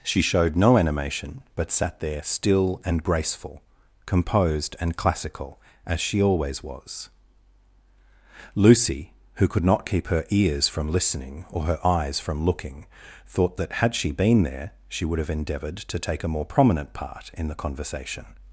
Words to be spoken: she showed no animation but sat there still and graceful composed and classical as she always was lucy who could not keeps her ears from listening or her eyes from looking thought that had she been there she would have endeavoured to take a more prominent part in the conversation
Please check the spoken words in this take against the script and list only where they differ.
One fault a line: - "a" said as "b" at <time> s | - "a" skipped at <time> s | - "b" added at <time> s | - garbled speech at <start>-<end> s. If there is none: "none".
- "keeps" said as "keep" at 9.8 s